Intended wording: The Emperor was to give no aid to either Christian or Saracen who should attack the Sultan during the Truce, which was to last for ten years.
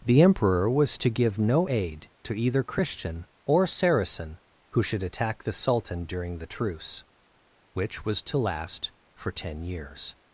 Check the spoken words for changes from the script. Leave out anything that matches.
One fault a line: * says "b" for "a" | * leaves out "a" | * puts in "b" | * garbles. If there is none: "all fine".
all fine